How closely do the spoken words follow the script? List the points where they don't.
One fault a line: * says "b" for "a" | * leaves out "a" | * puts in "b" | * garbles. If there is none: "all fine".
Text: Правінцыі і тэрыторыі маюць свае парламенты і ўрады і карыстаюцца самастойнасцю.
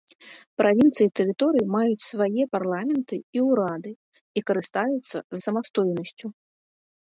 all fine